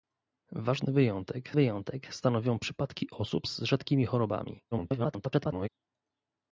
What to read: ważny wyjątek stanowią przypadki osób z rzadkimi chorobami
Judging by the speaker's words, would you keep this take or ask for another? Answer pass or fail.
fail